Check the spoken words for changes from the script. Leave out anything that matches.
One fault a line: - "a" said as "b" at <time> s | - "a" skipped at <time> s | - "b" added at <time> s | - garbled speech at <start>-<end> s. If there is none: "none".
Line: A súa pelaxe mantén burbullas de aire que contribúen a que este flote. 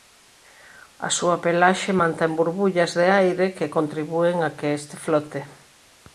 none